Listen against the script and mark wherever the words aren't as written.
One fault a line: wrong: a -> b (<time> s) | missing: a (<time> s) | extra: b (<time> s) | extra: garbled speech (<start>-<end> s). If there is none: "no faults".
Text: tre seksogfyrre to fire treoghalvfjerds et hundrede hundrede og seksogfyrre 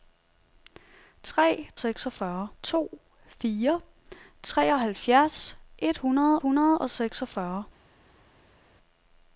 no faults